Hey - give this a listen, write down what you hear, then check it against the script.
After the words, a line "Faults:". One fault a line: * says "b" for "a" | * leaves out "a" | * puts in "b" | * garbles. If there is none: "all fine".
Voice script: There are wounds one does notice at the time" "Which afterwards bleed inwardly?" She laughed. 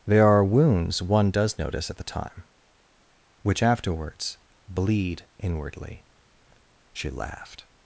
There are wounds one does notice at the time" "Which afterwards bleed inwardly?" She laughed.
Faults:
all fine